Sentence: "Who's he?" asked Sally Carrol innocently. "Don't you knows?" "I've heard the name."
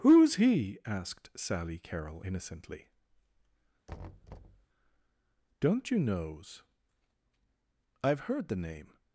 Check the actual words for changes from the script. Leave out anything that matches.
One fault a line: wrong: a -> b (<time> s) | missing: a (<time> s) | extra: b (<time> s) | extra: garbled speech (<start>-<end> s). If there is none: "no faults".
no faults